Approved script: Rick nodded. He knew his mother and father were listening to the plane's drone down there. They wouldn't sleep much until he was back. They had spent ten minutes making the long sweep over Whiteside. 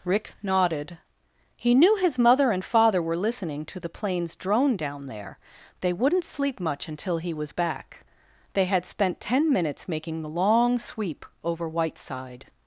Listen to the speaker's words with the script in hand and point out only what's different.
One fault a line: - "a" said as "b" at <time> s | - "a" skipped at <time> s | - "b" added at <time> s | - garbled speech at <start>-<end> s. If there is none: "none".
none